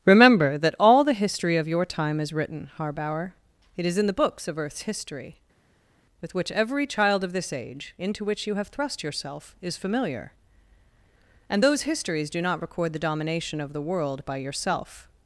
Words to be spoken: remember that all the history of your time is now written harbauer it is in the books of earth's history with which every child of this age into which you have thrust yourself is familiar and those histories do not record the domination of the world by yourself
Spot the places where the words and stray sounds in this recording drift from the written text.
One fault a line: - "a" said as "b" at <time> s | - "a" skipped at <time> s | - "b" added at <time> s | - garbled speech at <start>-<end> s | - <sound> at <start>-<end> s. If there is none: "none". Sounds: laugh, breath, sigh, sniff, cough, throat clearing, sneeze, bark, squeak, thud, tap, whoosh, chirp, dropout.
- "now" skipped at 2.3 s